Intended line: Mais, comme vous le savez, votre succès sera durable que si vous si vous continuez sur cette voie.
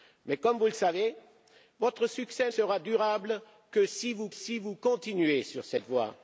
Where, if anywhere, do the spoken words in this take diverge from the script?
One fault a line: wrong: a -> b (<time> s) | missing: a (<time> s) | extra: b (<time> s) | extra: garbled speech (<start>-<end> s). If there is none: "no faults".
no faults